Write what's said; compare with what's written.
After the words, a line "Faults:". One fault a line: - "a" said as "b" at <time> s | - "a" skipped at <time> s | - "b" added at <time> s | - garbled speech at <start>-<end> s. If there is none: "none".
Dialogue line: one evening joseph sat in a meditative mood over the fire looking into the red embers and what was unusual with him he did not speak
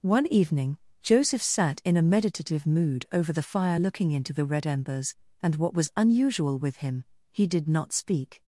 one evening joseph sat in a meditative mood over the fire looking into the red embers and what was unusual with him he did not speak
Faults:
none